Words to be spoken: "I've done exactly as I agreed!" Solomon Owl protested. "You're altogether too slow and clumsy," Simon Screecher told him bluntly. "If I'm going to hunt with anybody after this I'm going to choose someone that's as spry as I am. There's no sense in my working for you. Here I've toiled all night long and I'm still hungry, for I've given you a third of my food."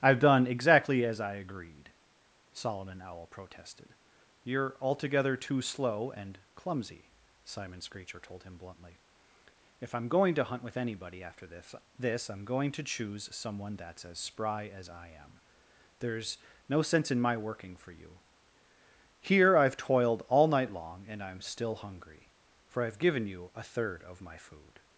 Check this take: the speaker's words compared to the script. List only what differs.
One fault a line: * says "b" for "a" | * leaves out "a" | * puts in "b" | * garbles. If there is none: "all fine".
* puts in "this"